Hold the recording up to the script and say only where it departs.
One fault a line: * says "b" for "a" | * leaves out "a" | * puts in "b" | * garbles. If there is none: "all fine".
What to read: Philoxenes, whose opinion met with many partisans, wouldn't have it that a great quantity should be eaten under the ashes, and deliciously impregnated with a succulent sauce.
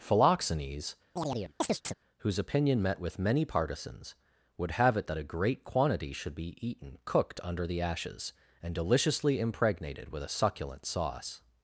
* says "would" for "wouldn't"
* puts in "cooked"